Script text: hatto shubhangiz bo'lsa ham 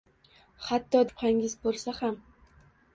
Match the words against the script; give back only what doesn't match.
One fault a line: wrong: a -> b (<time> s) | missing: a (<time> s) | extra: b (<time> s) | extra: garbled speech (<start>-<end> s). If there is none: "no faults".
no faults